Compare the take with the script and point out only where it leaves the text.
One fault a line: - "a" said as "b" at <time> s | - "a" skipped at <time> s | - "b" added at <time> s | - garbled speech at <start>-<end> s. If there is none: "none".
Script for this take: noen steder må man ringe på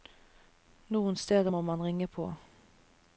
none